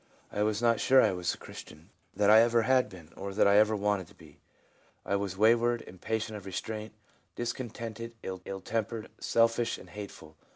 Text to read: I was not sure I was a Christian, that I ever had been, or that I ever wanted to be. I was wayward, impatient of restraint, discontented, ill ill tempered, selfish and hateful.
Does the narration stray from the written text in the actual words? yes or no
no